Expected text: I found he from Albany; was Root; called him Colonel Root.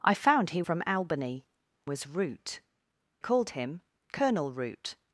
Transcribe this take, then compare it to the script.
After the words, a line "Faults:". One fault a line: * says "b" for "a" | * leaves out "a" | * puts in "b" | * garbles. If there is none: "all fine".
I found he from Albany; was Root; called him Colonel Root.
Faults:
all fine